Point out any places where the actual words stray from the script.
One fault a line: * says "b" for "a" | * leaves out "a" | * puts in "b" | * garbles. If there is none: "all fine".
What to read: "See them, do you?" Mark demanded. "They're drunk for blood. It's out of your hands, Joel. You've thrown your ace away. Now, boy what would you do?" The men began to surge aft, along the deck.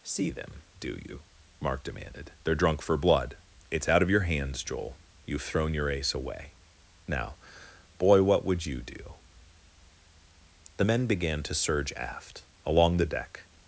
all fine